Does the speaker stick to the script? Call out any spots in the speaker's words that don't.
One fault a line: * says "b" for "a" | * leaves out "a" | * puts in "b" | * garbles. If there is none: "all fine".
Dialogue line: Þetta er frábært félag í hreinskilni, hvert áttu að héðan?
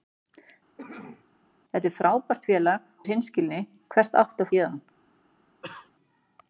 all fine